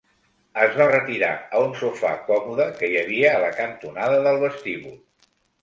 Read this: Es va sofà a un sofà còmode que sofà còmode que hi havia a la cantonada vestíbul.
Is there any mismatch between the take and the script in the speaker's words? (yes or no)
yes